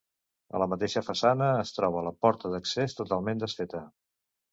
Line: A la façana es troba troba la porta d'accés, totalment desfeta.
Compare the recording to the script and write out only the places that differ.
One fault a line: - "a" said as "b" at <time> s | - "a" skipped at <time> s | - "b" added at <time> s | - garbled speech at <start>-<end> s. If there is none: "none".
- "mateixa" added at 0.7 s
- "troba" skipped at 2.0 s